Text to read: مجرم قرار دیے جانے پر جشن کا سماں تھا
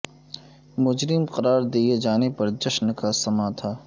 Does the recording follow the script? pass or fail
pass